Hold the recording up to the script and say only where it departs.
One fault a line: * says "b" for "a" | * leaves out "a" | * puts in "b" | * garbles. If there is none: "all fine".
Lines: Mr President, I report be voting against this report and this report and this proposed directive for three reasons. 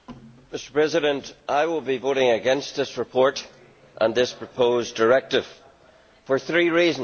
* says "will" for "report"
* leaves out "report and this"